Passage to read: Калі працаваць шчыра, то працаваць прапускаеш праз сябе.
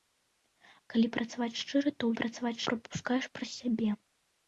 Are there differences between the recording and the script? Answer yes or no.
no